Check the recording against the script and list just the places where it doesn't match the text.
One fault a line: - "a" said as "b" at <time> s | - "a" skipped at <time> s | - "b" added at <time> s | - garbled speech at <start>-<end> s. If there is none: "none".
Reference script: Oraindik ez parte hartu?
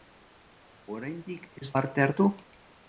none